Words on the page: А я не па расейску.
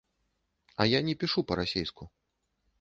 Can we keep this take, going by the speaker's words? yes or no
no